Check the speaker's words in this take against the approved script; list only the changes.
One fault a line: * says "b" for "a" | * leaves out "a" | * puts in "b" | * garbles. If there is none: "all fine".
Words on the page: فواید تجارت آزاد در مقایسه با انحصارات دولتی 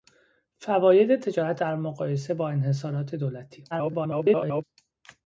* leaves out "آزاد"
* garbles